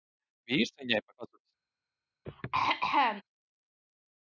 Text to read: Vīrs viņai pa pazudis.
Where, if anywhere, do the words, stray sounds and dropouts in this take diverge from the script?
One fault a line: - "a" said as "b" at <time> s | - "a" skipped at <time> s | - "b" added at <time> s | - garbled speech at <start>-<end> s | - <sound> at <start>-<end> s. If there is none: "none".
- throat clearing at 2.3-3.2 s